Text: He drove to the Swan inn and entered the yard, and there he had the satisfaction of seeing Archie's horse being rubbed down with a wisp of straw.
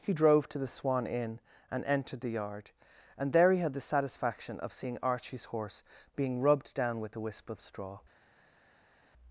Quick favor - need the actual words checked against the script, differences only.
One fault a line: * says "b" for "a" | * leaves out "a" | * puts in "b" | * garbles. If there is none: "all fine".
all fine